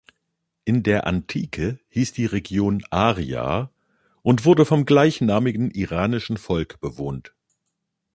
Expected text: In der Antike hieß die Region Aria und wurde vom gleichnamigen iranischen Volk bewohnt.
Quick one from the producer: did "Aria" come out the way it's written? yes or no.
yes